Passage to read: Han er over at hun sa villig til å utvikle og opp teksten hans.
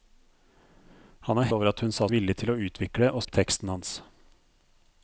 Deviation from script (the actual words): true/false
false